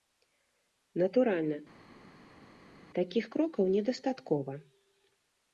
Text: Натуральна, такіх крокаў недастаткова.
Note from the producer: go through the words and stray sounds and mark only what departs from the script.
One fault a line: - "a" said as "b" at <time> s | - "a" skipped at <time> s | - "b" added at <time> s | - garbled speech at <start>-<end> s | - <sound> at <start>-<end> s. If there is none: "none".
none